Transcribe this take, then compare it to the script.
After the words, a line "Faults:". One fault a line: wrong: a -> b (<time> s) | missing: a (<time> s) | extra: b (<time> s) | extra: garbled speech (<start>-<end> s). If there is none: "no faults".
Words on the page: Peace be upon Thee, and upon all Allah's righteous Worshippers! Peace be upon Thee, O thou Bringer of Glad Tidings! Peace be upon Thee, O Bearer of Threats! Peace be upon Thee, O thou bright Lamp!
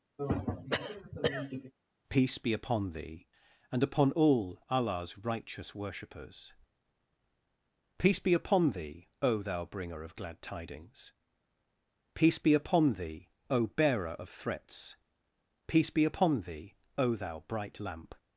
Peace be upon Thee, and upon all Allah's righteous Worshippers! Peace be upon Thee, O thou Bringer of Glad Tidings! Peace be upon Thee, O Bearer of Threats! Peace be upon Thee, O thou bright Lamp!
Faults:
no faults